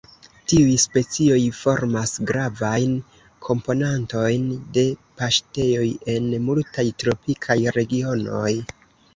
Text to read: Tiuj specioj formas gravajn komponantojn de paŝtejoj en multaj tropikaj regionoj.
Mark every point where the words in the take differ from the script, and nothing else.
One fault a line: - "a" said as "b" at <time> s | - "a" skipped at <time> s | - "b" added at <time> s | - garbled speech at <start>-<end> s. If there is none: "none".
none